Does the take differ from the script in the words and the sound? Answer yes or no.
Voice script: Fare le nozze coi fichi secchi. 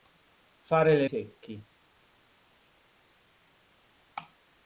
yes